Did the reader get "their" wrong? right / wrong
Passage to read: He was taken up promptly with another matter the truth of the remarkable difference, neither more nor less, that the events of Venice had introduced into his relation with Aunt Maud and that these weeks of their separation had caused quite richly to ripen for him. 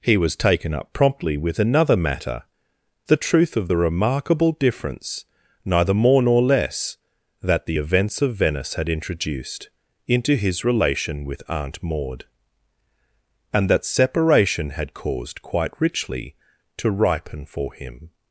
wrong